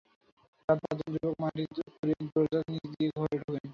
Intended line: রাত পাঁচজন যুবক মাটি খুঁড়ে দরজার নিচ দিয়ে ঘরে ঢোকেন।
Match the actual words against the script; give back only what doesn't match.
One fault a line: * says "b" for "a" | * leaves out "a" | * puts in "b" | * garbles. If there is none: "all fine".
all fine